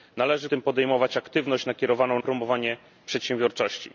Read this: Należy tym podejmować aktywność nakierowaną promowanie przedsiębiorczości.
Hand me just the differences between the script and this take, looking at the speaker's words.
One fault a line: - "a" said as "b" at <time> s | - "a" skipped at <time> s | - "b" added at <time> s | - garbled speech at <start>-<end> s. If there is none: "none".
none